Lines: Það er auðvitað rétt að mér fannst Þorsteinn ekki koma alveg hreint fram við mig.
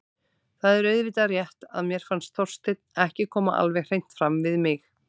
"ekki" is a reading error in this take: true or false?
false